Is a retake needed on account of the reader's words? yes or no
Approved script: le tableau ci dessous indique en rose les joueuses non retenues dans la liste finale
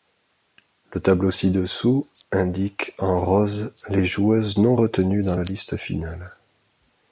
no